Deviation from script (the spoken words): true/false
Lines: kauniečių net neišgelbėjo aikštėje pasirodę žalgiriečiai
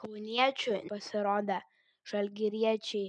true